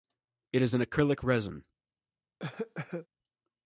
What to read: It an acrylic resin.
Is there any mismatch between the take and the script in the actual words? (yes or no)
yes